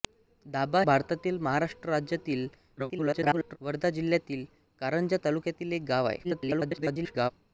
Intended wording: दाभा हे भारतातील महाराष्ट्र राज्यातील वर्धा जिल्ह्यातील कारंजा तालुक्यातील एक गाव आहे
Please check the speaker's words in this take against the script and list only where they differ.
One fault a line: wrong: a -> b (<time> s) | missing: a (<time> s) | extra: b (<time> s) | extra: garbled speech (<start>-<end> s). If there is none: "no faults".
missing: हे (0.8 s)
extra: garbled speech (2.8-3.6 s)
extra: garbled speech (6.2-7.3 s)